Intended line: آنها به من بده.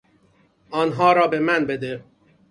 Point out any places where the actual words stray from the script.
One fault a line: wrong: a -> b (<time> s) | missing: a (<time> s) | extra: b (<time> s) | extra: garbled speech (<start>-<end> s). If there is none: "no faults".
extra: را (1.1 s)